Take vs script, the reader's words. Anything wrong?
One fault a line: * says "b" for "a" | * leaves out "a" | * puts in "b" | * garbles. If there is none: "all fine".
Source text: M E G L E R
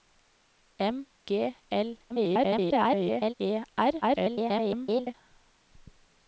* leaves out "E"
* garbles
* garbles